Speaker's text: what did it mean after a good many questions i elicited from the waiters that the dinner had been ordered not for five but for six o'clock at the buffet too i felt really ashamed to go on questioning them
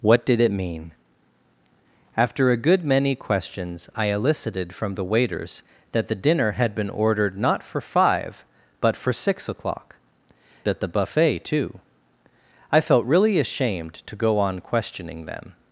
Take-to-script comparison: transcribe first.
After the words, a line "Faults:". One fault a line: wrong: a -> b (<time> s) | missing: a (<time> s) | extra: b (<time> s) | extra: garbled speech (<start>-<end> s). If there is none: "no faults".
what did it mean after a good many questions i elicited from the waiters that the dinner had been ordered not for five but for six o'clock at the buffet too i felt really ashamed to go on questioning them
Faults:
no faults